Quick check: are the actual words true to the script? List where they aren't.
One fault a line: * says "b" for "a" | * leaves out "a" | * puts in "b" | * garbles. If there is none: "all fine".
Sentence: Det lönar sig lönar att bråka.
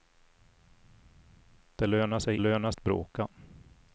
all fine